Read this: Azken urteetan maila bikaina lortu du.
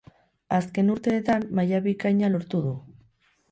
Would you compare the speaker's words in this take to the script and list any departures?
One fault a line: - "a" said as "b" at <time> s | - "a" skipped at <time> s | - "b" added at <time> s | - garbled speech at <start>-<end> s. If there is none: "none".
none